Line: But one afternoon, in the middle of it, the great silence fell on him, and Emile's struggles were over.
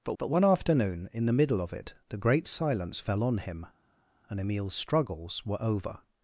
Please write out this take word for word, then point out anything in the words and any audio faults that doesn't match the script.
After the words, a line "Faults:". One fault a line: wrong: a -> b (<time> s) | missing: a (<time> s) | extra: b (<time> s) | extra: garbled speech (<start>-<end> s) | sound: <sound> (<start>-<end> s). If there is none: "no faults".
But but one afternoon, in the middle of it, the great silence fell on him, and Emile's struggles were over.
Faults:
extra: but (0.2 s)